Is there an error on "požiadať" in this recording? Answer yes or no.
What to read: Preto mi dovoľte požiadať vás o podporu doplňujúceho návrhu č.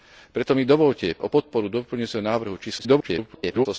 yes